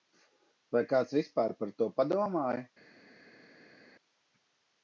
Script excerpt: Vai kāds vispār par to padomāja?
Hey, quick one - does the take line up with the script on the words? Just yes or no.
yes